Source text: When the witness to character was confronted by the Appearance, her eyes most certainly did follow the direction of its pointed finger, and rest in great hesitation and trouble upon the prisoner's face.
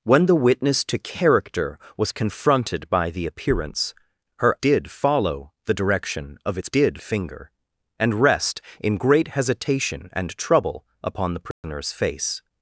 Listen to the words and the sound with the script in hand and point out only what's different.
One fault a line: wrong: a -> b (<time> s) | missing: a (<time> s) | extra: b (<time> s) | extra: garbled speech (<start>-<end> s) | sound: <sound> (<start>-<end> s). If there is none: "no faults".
missing: eyes most certainly (4.6 s)
wrong: pointed -> did (6.7 s)
sound: dropout (11.5-11.6 s)